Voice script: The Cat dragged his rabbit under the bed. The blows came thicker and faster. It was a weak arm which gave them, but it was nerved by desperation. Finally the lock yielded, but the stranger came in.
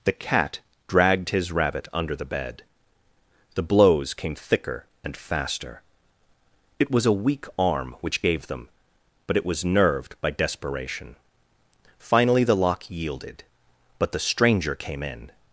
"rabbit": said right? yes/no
yes